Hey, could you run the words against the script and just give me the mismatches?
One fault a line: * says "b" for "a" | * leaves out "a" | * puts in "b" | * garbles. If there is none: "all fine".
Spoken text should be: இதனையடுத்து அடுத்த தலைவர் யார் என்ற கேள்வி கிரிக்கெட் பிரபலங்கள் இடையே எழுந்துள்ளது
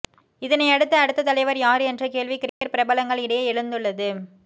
all fine